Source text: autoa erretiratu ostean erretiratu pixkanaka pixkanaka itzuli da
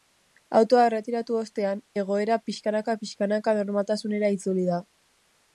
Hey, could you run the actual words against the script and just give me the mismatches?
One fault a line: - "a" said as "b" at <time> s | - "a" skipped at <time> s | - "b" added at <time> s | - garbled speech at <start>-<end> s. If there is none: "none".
- "erretiratu" said as "egoera" at 2.0 s
- "normaltasunera" added at 3.6 s